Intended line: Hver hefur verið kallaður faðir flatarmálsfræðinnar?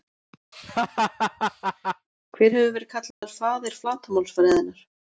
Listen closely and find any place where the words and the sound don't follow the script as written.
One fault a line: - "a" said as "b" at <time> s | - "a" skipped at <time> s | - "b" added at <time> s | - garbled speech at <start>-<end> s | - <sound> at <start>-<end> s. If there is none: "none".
- laugh at 0.5-2.1 s
- dropout at 3.1-3.2 s